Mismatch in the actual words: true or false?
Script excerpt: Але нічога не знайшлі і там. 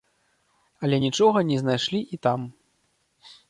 false